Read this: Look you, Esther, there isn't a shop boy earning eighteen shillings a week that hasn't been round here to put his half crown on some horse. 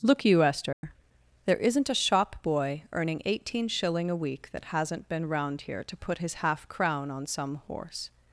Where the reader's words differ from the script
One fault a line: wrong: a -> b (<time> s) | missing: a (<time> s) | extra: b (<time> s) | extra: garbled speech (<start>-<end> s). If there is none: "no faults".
wrong: shillings -> shilling (3.7 s)